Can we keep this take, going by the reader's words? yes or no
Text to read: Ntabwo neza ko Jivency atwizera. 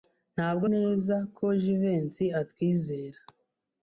yes